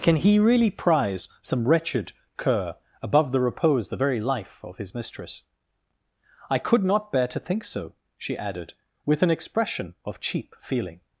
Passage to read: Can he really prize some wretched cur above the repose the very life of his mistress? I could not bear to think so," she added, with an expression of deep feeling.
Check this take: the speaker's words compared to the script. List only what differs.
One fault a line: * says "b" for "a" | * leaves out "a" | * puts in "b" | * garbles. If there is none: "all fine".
* says "cheap" for "deep"